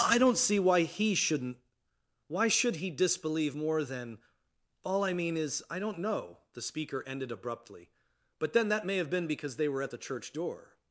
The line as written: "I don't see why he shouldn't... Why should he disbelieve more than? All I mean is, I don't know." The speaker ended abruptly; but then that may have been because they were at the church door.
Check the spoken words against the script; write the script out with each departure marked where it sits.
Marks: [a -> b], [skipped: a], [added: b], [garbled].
"I don't see why he shouldn't... Why should he disbelieve more than? All I mean is, I don't know." The speaker ended abruptly; but then that may have been because they were at the church door.